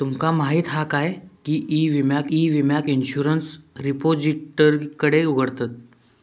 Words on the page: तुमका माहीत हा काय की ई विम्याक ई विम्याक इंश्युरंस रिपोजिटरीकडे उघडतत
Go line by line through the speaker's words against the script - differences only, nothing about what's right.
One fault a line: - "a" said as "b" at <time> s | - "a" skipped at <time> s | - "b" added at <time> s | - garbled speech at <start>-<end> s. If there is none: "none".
none